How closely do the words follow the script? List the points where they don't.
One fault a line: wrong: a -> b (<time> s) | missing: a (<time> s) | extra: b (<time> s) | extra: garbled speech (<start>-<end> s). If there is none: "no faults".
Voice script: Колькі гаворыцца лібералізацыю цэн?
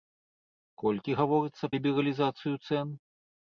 no faults